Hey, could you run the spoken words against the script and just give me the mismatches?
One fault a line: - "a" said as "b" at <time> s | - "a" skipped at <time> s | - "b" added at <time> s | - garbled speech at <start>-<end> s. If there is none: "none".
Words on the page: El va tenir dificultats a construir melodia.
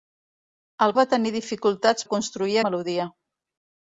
none